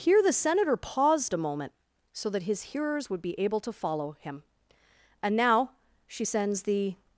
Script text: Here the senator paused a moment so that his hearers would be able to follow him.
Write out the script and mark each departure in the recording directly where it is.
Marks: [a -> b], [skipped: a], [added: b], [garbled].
Here the senator paused a moment so that his hearers would be able to follow him. [added: And now she sends the]